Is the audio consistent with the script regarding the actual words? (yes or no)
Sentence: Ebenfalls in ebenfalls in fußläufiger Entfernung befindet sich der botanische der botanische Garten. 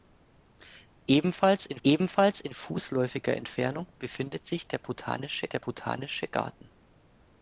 yes